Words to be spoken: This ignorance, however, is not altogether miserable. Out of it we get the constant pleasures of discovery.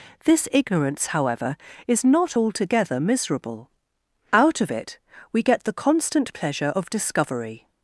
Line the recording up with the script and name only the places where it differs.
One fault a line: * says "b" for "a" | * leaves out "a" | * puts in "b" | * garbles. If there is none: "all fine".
* says "pleasure" for "pleasures"